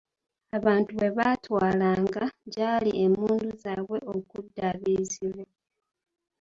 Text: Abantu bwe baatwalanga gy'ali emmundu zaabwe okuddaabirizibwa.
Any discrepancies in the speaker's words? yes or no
no